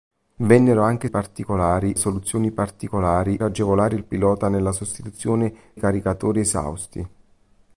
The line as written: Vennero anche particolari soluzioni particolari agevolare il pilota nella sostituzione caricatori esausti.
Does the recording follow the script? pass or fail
pass